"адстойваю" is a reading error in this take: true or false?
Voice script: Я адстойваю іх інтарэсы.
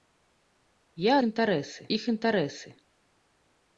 true